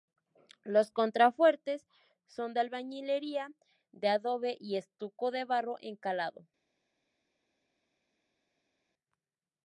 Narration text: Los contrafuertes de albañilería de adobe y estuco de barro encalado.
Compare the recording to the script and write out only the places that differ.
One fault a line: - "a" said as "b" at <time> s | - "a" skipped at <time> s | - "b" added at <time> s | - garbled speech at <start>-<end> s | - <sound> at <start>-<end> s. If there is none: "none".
- "son" added at 2.2 s